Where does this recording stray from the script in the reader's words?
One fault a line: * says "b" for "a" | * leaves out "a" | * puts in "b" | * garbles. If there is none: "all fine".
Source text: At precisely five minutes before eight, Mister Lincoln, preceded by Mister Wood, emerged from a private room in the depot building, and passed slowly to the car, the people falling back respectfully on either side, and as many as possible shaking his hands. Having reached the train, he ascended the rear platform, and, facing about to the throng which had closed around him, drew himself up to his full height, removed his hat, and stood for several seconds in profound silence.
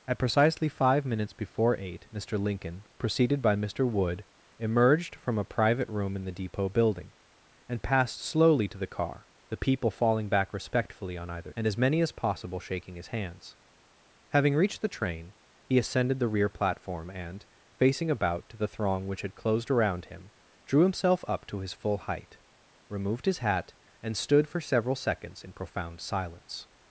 * leaves out "side"